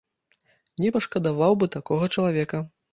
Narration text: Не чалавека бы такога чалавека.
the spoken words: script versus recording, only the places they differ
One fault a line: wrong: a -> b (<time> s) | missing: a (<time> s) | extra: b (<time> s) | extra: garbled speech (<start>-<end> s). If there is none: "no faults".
wrong: чалавека -> пашкадаваў (1.0 s)